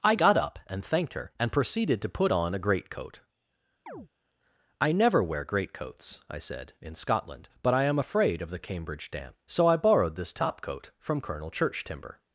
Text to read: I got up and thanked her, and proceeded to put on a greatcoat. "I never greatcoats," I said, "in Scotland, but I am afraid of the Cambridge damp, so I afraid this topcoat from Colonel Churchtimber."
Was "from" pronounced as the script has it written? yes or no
yes